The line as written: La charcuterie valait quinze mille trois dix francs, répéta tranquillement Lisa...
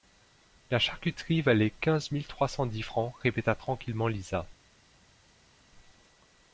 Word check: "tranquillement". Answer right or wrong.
right